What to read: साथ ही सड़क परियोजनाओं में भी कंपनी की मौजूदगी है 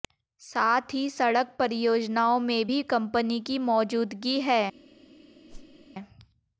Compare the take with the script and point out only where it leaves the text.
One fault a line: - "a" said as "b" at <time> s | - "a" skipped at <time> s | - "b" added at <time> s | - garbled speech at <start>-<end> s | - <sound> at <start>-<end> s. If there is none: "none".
- whoosh at 5.5-5.9 s